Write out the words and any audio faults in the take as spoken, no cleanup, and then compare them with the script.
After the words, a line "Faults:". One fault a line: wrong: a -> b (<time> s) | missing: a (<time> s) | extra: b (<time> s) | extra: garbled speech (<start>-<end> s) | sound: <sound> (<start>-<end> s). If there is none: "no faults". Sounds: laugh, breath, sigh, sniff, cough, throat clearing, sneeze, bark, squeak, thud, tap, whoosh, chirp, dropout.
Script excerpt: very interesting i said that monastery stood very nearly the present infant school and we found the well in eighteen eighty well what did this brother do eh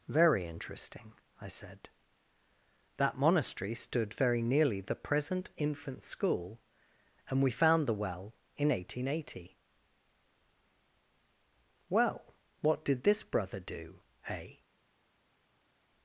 very interesting i said that monastery stood very nearly the present infant school and we found the well in eighteen eighty well what did this brother do eh
Faults:
no faults